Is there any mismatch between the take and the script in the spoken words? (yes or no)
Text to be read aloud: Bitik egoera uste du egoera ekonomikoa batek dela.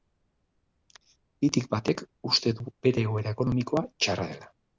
yes